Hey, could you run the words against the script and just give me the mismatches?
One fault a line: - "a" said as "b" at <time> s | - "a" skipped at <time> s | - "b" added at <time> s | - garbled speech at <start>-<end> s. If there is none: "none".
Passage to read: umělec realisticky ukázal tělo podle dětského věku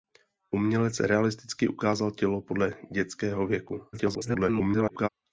- garbled speech at 3.9-5.1 s